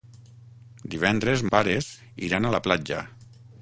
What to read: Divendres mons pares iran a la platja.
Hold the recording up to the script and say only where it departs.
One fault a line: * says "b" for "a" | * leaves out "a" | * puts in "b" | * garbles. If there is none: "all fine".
* leaves out "mons"